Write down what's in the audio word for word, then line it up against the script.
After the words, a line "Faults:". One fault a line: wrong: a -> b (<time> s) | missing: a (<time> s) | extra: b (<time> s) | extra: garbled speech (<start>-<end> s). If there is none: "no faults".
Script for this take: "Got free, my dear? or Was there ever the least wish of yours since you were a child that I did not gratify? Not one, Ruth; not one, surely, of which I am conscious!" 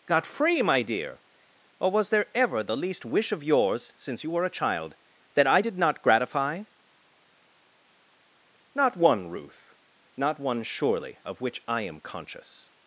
"Got free, my dear? or Was there ever the least wish of yours since you were a child that I did not gratify? Not one, Ruth; not one, surely, of which I am conscious!"
Faults:
no faults